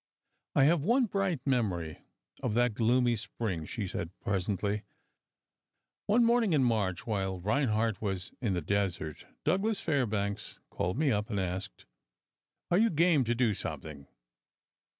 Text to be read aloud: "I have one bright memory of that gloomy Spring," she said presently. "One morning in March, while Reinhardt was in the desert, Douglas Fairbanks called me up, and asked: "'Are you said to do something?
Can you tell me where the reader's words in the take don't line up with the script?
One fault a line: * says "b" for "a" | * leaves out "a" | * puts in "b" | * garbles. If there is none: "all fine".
* says "game" for "said"